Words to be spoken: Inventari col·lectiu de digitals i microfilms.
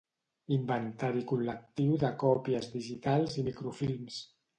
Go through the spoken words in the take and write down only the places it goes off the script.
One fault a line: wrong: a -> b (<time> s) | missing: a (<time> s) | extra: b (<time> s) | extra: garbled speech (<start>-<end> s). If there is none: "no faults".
extra: còpies (2.2 s)